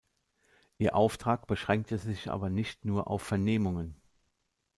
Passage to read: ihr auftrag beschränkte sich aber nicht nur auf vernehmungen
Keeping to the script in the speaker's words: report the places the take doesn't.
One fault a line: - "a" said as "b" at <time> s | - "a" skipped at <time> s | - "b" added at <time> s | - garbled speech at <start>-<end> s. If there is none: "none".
none